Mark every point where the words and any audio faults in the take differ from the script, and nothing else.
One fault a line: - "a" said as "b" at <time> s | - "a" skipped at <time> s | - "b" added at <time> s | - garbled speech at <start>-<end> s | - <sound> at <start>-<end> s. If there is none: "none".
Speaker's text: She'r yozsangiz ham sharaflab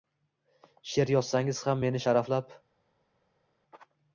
- "meni" added at 1.9 s